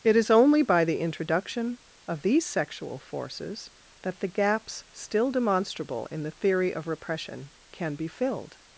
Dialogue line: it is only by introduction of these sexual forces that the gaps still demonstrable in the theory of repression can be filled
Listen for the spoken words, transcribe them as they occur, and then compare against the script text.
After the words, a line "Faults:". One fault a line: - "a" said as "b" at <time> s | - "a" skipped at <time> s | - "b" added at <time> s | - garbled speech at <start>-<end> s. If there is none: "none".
it is only by the introduction of these sexual forces that the gaps still demonstrable in the theory of repression can be filled
Faults:
- "the" added at 0.8 s